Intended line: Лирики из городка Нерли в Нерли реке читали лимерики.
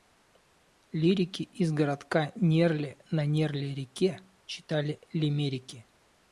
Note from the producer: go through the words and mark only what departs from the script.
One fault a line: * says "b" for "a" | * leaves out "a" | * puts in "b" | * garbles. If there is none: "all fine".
* says "на" for "в"